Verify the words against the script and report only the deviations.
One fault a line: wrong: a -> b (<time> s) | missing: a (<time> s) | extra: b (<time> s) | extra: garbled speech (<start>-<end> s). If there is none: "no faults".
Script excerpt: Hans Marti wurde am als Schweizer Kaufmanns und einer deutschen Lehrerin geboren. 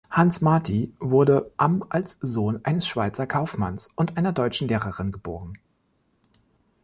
extra: Sohn eines (2.2 s)